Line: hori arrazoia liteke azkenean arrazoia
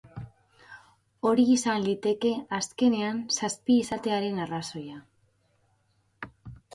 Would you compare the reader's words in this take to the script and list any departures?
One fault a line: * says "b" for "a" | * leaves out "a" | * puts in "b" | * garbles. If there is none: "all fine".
* says "izan" for "arrazoia"
* puts in "zazpi izatearen"